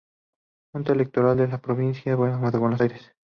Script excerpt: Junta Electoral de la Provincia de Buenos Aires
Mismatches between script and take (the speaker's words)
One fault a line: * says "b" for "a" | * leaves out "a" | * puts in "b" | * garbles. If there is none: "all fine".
all fine